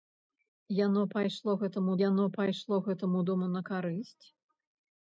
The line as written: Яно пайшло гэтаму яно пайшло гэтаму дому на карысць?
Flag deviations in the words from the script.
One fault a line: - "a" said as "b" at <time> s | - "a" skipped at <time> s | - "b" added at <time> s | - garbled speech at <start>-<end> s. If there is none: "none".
none